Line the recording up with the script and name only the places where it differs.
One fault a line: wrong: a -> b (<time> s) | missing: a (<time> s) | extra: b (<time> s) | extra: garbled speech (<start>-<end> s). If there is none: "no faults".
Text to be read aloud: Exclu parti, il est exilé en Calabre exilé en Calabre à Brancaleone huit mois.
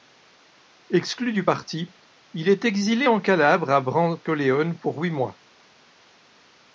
extra: du (1.3 s)
missing: exilé en Calabre (3.7 s)
extra: pour (4.8 s)